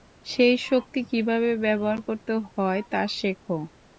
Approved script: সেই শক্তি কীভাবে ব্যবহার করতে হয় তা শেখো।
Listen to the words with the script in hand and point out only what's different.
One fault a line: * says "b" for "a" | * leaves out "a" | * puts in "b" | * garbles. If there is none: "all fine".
all fine